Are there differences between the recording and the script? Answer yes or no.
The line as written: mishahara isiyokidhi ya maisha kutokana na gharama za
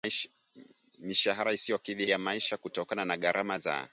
no